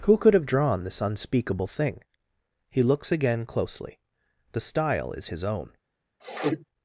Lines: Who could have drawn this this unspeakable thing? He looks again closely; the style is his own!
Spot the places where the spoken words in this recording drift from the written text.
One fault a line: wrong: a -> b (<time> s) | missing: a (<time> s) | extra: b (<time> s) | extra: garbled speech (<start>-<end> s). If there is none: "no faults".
missing: this (1.0 s)